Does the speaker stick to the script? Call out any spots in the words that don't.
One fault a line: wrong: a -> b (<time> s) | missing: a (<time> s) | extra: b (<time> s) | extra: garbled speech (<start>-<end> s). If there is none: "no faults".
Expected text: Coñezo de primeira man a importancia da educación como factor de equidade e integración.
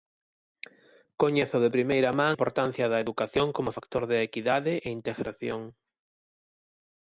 missing: a (2.4 s)